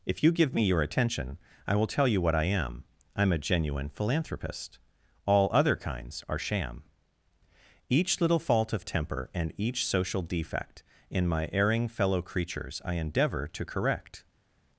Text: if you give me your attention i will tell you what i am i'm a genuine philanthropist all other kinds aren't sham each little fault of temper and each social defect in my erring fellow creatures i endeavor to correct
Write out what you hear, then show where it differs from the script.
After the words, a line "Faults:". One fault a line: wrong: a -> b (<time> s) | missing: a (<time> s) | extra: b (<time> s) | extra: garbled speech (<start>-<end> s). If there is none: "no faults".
if you give me your attention i will tell you what i am i'm a genuine philanthropist all other kinds are sham each little fault of temper and each social defect in my erring fellow creatures i endeavor to correct
Faults:
wrong: aren't -> are (6.3 s)